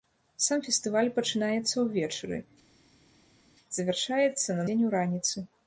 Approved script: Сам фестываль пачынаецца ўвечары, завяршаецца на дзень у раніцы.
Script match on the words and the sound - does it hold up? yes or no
yes